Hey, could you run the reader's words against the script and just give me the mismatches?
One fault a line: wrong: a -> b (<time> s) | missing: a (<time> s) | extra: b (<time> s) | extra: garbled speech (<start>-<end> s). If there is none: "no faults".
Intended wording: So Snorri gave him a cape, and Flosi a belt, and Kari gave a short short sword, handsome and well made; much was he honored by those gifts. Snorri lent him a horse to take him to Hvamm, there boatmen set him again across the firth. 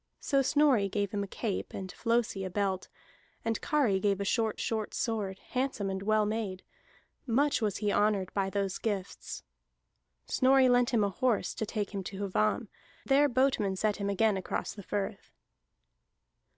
no faults